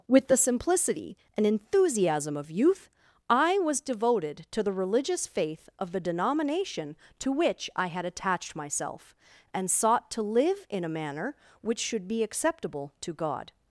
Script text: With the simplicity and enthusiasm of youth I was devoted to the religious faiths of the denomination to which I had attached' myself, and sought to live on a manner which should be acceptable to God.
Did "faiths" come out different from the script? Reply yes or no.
yes